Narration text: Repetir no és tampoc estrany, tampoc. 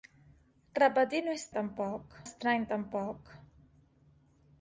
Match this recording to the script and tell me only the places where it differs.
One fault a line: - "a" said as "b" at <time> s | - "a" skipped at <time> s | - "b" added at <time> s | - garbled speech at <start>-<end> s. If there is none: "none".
none